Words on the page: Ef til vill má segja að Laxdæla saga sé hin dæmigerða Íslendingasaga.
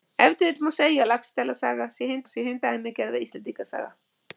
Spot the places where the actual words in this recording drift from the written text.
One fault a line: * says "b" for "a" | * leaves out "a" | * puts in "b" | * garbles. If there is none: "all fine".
* puts in "sé hin"